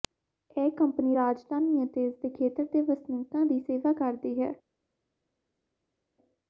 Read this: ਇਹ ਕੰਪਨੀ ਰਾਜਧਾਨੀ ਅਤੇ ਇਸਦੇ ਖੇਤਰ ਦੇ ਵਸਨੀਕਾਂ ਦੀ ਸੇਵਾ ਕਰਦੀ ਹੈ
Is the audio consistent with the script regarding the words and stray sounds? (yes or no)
yes